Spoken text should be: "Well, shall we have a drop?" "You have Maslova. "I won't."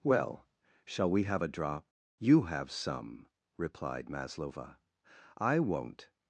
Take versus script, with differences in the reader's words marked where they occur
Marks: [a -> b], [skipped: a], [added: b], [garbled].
"Well, shall we have a drop?" "You have [added: some replied] Maslova. "I won't."